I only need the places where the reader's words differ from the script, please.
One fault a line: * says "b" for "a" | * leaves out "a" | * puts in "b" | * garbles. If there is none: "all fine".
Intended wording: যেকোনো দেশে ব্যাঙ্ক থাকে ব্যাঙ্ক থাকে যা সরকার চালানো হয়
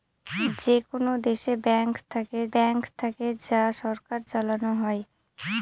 all fine